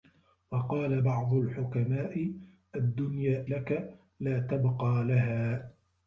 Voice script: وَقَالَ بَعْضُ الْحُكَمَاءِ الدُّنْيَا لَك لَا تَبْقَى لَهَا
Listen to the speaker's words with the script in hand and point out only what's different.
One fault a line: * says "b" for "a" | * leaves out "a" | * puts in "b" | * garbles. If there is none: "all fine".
all fine